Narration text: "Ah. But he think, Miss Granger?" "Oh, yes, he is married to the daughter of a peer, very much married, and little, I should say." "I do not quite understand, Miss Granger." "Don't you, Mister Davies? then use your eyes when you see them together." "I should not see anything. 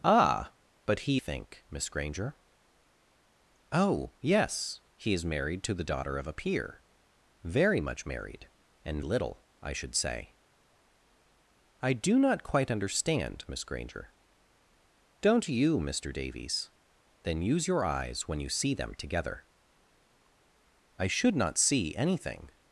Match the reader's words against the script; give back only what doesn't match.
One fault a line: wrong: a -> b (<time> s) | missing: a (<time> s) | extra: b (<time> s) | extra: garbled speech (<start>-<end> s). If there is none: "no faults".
no faults